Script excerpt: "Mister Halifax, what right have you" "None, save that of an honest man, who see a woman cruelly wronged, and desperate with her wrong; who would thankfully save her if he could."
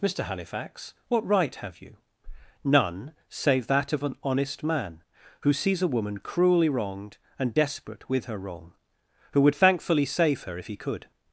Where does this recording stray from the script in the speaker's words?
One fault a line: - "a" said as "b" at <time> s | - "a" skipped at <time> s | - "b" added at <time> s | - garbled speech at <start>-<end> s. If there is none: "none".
- "see" said as "sees" at 5.5 s